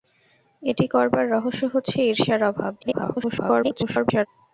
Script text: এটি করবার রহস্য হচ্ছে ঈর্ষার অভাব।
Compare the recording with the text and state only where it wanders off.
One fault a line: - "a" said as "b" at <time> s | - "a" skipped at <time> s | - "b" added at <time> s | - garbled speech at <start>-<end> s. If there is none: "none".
- garbled speech at 2.8-4.3 s